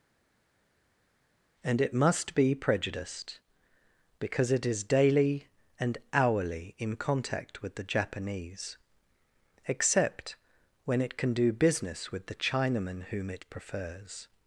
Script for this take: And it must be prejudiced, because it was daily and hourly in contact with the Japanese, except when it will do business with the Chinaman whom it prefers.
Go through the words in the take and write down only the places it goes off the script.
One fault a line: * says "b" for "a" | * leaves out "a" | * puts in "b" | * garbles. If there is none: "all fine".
* says "is" for "was"
* says "can" for "will"